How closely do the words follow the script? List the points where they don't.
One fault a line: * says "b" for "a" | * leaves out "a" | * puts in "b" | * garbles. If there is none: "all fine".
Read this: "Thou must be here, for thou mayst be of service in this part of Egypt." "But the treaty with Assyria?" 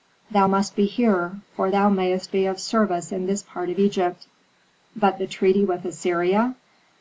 all fine